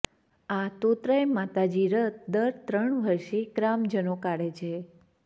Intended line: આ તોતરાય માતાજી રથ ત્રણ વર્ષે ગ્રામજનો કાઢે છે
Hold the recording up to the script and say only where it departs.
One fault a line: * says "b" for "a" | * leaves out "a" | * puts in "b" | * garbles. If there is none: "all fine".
* puts in "દર"